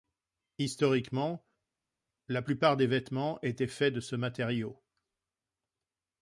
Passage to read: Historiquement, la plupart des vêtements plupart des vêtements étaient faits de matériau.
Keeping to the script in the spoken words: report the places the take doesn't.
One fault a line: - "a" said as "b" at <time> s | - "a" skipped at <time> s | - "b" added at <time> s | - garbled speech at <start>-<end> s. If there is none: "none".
- "plupart des vêtements" skipped at 3.4 s
- "ce" added at 4.0 s